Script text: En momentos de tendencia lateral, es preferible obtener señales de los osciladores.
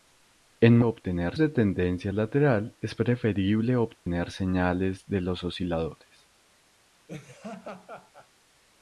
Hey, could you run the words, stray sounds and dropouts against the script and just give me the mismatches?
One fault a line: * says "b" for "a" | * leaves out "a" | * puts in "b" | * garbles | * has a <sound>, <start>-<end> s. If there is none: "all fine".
* says "obtener" for "momentos"
* has a dropout, 4.0-4.1 s
* has a laugh, 7.1-8.3 s